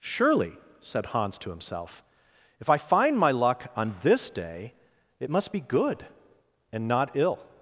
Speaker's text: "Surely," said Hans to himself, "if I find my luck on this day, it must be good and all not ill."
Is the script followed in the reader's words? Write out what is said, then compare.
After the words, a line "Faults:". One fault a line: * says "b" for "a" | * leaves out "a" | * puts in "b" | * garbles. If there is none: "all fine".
"Surely," said Hans to himself, "if I find my luck on this day, it must be good and not ill."
Faults:
* leaves out "all"